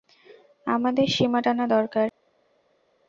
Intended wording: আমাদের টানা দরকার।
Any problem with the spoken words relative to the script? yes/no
yes